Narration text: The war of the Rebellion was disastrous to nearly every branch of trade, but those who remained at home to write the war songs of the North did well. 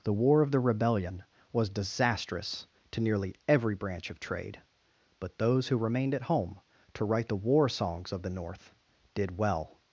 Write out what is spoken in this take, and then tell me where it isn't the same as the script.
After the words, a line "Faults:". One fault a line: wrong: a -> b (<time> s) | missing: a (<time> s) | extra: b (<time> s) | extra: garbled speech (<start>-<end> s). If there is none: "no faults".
The war of the Rebellion was disastrous to nearly every branch of trade, but those who remained at home to write the war songs of the North did well.
Faults:
no faults